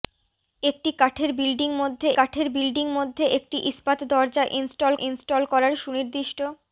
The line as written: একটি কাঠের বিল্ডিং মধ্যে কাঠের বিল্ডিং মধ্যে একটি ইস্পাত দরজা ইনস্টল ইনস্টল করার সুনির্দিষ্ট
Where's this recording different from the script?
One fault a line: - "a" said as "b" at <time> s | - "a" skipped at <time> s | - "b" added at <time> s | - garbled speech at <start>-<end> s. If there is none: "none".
none